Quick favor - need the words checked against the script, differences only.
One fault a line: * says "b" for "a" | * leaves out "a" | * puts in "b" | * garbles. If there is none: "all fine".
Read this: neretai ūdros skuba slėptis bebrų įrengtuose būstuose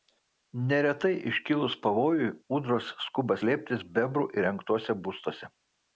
* puts in "iškilus pavojui"